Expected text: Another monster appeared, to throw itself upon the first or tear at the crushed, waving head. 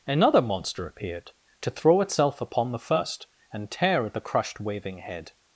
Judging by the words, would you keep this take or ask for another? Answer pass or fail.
fail